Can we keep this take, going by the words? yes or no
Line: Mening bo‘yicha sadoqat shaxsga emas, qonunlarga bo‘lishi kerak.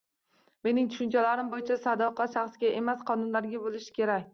no